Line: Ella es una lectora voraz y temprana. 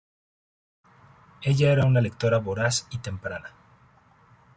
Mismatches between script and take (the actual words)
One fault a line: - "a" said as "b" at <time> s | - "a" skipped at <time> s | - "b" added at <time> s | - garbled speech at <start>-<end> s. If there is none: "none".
- "es" said as "era" at 1.7 s